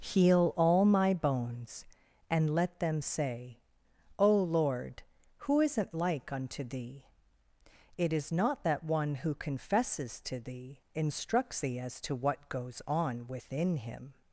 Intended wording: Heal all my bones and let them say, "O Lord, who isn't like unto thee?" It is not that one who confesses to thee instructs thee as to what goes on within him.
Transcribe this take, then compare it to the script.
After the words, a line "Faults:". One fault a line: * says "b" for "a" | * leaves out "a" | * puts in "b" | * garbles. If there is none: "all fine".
Heal all my bones and let them say, "O Lord, who isn't like unto thee?" It is not that one who confesses to thee instructs thee as to what goes on within him.
Faults:
all fine